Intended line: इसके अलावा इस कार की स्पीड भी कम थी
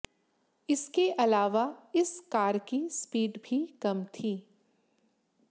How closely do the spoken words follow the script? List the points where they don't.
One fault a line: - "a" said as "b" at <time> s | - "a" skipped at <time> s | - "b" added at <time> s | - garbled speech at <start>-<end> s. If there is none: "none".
none